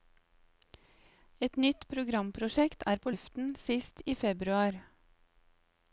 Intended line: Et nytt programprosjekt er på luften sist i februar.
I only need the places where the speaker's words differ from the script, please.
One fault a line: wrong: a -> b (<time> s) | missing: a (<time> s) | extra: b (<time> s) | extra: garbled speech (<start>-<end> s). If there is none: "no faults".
no faults